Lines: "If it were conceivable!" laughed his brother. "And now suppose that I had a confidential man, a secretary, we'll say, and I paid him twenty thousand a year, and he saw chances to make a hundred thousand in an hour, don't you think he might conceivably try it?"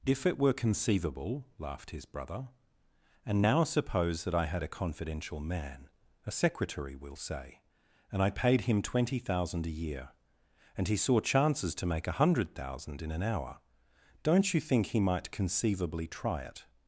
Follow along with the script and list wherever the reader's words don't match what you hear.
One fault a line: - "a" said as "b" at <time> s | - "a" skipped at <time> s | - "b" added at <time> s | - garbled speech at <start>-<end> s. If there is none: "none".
none